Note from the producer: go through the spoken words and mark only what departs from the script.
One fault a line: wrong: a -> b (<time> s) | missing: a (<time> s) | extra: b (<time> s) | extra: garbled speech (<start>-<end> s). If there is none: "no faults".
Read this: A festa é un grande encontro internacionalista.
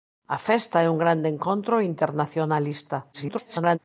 extra: garbled speech (3.1-3.8 s)